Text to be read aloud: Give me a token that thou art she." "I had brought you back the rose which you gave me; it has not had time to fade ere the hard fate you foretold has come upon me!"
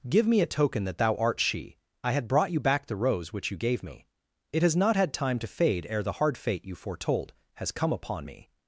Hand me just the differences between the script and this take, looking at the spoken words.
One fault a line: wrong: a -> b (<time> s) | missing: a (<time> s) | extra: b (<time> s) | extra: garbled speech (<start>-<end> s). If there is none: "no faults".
no faults